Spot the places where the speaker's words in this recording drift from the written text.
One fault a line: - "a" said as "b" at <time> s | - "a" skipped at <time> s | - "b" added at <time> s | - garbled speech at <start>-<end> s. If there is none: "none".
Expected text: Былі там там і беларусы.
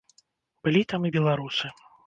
- "там" skipped at 1.1 s